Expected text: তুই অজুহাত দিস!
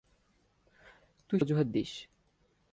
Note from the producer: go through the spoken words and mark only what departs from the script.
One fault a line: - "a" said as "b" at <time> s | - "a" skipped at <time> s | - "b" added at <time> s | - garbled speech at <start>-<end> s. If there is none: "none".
none